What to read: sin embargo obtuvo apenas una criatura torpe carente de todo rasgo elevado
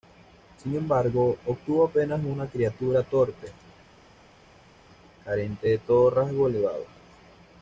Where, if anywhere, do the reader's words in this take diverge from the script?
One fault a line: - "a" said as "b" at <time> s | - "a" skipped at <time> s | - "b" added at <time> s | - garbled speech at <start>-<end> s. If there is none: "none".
none